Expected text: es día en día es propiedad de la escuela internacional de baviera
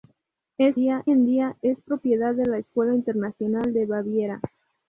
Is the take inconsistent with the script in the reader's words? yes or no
no